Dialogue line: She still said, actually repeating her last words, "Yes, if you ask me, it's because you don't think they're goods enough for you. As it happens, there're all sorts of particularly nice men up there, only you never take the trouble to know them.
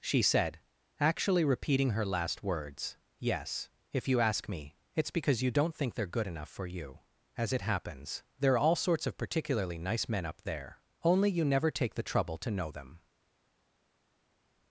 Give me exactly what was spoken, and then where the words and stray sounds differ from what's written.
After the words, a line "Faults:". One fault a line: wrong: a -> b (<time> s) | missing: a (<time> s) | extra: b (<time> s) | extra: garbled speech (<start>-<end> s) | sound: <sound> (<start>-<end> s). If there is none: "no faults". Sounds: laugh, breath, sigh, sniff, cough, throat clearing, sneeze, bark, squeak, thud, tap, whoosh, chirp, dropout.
She said, actually repeating her last words, "Yes, if you ask me, it's because you don't think they're good enough for you. As it happens, there're all sorts of particularly nice men up there, only you never take the trouble to know them.
Faults:
missing: still (0.2 s)
wrong: goods -> good (6.1 s)